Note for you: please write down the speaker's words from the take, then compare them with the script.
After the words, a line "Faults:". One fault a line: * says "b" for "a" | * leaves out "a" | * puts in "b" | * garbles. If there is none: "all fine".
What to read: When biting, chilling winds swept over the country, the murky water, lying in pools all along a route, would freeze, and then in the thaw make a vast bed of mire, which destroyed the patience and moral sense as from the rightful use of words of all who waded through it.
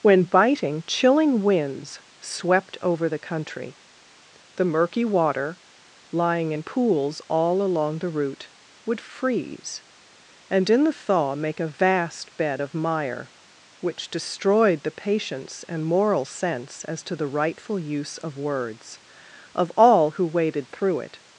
When biting, chilling winds swept over the country, the murky water, lying in pools all along the route, would freeze, and in the thaw make a vast bed of mire, which destroyed the patience and moral sense as to the rightful use of words of all who waded through it.
Faults:
* says "the" for "a"
* leaves out "then"
* says "to" for "from"